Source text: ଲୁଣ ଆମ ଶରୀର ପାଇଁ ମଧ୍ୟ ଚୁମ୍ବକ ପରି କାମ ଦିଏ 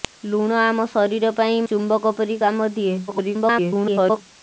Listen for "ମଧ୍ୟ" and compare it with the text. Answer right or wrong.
wrong